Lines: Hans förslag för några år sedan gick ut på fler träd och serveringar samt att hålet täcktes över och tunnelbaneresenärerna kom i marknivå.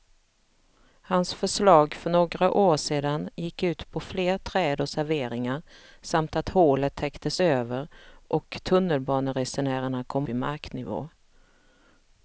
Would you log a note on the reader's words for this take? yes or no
no